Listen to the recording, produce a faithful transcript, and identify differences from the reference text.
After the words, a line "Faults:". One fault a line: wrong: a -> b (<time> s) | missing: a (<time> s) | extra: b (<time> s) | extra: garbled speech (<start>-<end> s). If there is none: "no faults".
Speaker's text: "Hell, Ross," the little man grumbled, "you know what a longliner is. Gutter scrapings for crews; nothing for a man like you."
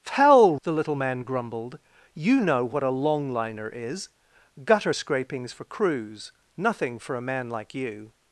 "Hell," The little man grumbled, "you know what a longliner is. Gutter scrapings for crews; nothing for a man like you."
Faults:
missing: Ross (0.6 s)